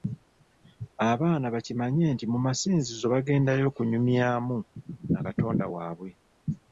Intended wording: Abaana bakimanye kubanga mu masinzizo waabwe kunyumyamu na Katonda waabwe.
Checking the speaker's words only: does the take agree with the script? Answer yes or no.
no